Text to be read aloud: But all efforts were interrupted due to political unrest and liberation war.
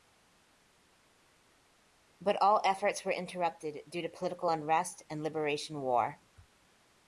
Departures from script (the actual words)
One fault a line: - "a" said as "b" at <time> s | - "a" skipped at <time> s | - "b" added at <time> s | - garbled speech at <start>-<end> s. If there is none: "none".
none